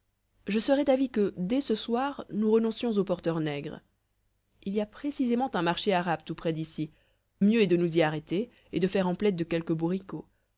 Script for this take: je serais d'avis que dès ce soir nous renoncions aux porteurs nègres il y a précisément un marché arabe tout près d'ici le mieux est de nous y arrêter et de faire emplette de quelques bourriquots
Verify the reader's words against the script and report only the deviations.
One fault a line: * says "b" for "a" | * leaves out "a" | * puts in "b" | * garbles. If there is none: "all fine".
* leaves out "le"